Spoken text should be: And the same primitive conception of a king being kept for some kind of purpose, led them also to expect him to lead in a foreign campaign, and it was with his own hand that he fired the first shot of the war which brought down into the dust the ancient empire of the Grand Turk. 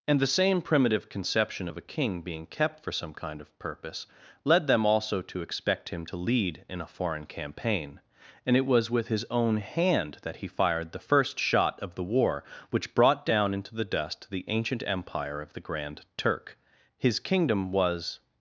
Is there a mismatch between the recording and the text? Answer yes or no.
yes